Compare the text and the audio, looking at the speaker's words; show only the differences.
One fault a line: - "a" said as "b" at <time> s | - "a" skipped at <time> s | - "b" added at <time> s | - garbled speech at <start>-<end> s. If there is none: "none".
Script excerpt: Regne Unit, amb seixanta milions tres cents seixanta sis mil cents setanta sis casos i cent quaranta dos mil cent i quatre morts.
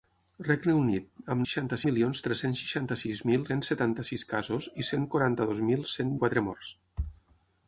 none